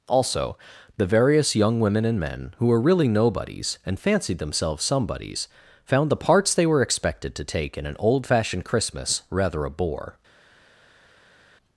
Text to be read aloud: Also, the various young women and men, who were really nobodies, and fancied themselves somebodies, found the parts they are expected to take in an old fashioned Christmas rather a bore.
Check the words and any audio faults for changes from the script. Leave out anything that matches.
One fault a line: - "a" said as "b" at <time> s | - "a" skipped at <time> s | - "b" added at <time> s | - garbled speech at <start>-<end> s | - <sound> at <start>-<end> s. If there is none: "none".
- "are" said as "were" at 6.7 s